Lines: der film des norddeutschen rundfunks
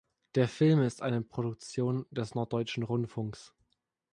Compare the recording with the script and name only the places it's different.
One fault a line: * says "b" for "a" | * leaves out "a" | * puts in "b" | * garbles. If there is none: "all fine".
* puts in "ist eine produktion"